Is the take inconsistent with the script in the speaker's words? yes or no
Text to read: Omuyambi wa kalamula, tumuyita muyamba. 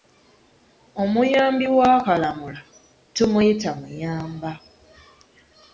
no